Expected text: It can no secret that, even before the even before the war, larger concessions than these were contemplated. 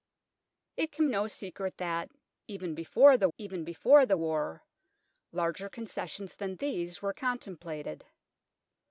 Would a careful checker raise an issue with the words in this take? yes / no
no